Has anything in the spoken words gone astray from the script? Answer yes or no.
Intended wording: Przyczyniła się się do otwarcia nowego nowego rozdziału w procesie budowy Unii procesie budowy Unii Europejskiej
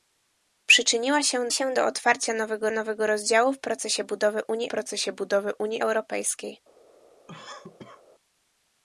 no